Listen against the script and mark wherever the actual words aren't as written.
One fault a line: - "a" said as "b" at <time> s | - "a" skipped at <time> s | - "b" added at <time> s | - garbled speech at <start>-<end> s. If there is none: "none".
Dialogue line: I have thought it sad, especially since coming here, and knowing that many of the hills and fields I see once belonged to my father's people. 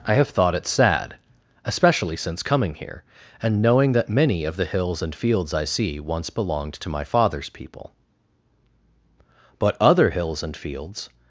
- "But other hills and fields" added at 9.6 s